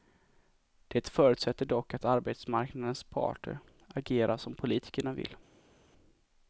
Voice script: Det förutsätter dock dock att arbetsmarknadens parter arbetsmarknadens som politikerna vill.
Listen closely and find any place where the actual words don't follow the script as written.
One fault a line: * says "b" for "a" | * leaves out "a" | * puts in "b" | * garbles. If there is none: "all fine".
* leaves out "dock"
* says "agerar" for "arbetsmarknadens"